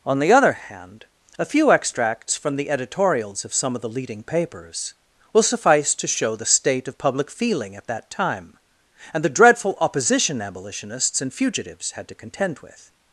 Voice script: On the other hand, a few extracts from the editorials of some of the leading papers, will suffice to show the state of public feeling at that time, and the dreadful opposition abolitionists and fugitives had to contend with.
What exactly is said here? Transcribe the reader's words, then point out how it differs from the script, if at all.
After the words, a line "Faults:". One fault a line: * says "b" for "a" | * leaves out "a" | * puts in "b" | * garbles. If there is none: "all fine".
On the other hand, a few extracts from the editorials of some of the leading papers, will suffice to show the state of public feeling at that time, and the dreadful opposition abolitionists and fugitives had to contend with.
Faults:
all fine